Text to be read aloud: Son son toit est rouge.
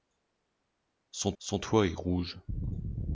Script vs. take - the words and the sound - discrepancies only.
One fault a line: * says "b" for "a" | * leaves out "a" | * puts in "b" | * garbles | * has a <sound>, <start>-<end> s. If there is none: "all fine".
all fine